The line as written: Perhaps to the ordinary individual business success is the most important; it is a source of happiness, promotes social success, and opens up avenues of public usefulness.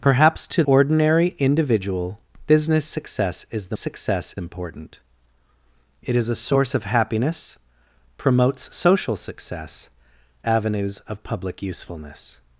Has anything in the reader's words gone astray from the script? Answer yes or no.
yes